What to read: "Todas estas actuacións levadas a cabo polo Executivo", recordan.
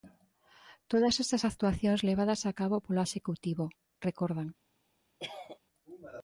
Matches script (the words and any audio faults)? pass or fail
fail